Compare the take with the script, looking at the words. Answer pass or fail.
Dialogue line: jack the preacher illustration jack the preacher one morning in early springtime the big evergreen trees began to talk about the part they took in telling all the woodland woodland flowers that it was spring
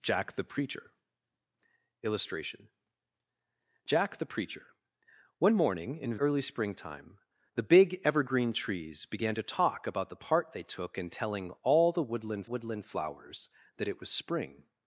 pass